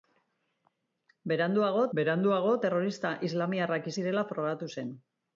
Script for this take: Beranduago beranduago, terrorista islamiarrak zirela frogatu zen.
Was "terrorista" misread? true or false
false